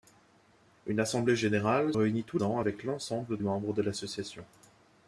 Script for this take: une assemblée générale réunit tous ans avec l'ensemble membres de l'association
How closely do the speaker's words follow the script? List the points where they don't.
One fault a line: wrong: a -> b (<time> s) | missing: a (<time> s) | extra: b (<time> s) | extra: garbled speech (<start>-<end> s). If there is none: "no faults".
no faults